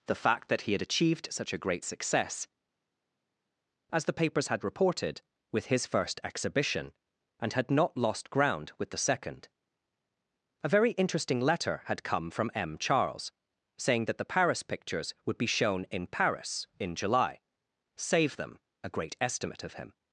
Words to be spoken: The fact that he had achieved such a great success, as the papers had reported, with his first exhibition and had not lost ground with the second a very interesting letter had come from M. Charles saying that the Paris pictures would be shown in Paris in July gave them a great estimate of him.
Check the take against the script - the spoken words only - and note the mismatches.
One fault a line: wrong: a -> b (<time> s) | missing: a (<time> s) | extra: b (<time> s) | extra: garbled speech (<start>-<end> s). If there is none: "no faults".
wrong: gave -> save (17.9 s)